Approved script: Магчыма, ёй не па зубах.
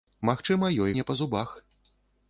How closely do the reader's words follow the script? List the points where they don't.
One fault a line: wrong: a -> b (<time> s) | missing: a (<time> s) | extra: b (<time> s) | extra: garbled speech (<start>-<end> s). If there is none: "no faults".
no faults